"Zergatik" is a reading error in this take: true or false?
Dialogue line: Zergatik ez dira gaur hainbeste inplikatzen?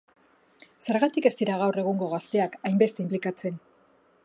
false